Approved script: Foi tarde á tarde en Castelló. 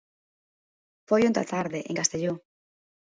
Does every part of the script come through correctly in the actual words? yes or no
no